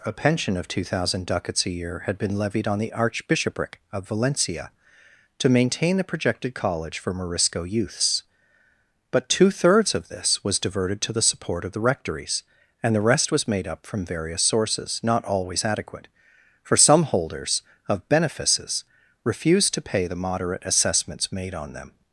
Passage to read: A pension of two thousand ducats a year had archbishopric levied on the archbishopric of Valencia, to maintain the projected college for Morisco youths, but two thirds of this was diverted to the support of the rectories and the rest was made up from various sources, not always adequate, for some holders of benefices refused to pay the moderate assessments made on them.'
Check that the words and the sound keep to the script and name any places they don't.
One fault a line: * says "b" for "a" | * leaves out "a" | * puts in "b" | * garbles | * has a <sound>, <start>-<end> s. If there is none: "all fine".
* says "been" for "archbishopric"